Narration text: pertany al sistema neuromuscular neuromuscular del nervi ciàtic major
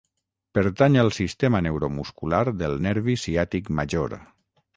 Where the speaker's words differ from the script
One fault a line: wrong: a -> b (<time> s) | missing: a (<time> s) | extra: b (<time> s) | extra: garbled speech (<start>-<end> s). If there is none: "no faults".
missing: neuromuscular (2.4 s)